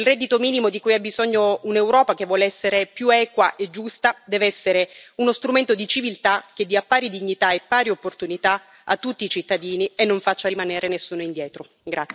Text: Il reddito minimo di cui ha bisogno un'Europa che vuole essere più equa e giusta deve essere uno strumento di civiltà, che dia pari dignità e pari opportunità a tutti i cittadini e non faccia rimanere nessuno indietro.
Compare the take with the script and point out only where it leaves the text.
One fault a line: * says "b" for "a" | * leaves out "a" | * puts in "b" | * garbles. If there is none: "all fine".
all fine